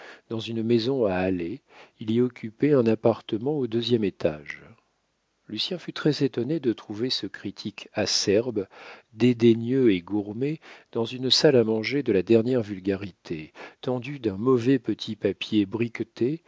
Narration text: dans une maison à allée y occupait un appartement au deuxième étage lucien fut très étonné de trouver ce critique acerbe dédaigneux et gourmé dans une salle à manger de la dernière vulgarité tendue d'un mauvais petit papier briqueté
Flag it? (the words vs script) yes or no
yes